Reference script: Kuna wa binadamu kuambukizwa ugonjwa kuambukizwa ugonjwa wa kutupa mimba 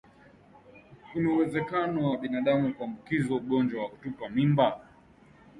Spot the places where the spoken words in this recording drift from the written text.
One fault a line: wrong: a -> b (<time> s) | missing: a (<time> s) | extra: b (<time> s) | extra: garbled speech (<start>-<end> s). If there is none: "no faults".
extra: uwezekano (1.3 s)
missing: kuambukizwa ugonjwa (3.8 s)